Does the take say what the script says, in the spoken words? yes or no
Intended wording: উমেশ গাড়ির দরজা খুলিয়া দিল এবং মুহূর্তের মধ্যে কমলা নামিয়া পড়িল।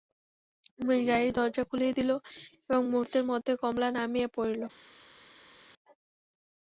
yes